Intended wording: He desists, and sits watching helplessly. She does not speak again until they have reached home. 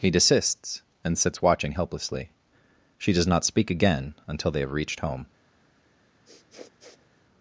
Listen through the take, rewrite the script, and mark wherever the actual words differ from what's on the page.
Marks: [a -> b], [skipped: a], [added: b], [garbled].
He desists, and sits watching helplessly. She does not speak again until they have reached home.